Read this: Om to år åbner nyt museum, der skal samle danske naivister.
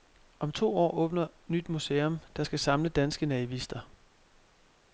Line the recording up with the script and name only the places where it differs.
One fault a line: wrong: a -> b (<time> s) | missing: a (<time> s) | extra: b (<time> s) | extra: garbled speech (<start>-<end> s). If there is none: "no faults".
no faults